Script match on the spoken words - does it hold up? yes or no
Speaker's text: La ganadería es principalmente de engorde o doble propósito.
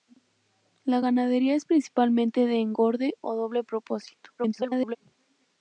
no